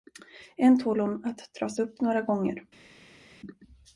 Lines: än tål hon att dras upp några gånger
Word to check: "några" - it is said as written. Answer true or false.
true